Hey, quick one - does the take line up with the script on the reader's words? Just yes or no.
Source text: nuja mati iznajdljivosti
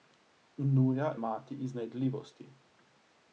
yes